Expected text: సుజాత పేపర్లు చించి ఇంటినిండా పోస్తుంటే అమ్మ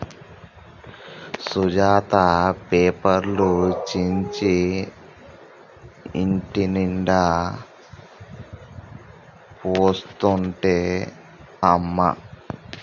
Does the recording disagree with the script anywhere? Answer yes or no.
no